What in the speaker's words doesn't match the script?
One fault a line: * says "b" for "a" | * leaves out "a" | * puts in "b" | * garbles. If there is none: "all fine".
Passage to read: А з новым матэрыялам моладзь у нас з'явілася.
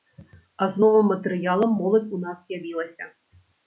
all fine